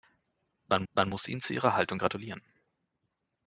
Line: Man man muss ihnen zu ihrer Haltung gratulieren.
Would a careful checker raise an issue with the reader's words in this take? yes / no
no